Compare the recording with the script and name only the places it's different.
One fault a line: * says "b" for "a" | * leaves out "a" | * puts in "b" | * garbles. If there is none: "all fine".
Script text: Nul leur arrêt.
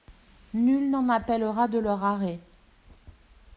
* puts in "n'en appellera de"